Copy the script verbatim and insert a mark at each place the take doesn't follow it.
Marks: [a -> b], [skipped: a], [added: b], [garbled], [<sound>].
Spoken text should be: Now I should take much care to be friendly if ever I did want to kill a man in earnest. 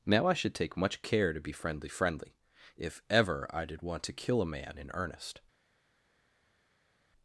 Now I should take much care to be friendly [added: friendly] if ever I did want to kill a man in earnest.